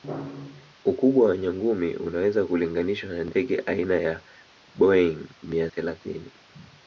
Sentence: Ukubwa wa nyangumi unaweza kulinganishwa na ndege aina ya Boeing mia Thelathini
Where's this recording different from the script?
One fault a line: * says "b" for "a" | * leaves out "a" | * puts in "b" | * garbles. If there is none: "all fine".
all fine